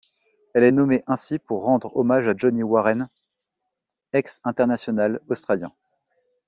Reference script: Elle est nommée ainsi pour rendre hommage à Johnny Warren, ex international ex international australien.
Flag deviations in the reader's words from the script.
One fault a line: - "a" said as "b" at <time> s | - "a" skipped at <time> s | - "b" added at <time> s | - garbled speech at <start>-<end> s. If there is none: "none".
- "ex international" skipped at 5.2 s